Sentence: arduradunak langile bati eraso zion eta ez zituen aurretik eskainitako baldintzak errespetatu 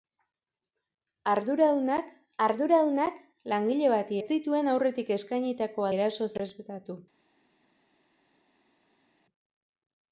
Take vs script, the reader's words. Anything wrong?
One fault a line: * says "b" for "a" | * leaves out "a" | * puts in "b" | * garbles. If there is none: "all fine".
* puts in "arduradunak"
* leaves out "eraso zion eta"
* says "eraso" for "baldintzak"